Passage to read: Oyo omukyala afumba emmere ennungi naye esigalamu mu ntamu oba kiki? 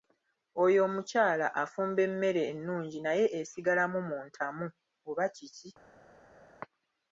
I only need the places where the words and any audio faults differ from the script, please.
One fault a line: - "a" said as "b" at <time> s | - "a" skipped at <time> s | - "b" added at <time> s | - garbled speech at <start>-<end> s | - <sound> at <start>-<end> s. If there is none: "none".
none